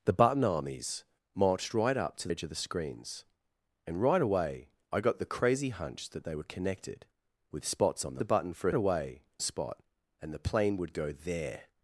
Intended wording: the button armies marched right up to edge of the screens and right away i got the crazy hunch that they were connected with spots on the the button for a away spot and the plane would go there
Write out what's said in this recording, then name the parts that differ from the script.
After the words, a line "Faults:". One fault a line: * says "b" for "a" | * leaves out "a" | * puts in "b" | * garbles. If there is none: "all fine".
the button armies marched right up to edge of the screens and right away i got the crazy hunch that they were connected with spots on the the button for a away spot and the plane would go there
Faults:
all fine